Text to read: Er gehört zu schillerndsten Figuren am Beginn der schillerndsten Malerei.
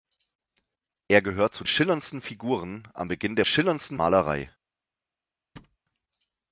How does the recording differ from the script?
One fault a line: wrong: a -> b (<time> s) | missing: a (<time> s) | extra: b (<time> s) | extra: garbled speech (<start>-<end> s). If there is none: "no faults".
no faults